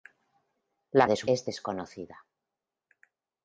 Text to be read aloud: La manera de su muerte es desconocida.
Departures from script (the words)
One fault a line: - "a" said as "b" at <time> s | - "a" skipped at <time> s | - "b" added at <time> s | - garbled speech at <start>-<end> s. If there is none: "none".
- "manera" skipped at 1.1 s
- "muerte" skipped at 1.3 s